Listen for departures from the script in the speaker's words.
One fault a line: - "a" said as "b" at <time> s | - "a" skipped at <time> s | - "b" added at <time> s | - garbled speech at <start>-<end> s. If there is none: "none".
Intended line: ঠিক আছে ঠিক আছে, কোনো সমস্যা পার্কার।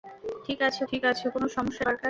none